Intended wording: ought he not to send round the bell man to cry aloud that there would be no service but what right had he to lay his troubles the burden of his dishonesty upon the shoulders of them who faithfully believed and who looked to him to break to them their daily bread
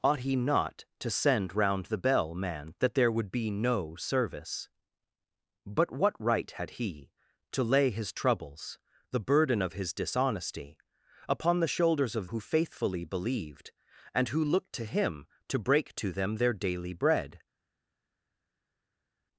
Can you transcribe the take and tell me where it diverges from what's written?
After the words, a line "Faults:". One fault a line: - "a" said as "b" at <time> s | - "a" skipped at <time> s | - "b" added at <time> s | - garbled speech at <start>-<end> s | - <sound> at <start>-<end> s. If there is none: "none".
ought he not to send round the bell man that there would be no service but what right had he to lay his troubles the burden of his dishonesty upon the shoulders of who faithfully believed and who looked to him to break to them their daily bread
Faults:
- "to cry aloud" skipped at 2.7 s
- "them" skipped at 12.3 s